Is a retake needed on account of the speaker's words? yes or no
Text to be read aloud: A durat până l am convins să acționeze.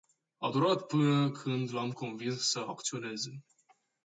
yes